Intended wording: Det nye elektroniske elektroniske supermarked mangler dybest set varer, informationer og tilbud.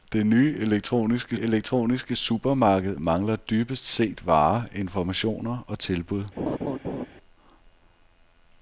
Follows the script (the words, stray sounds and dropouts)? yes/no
no